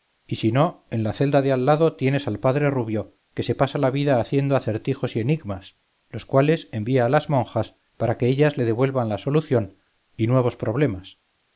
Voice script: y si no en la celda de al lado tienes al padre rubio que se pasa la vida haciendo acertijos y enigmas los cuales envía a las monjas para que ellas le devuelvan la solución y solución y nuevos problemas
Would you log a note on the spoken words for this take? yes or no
yes